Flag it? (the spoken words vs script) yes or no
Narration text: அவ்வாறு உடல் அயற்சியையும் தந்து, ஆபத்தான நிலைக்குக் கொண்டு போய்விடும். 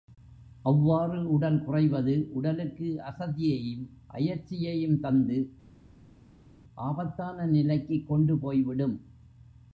yes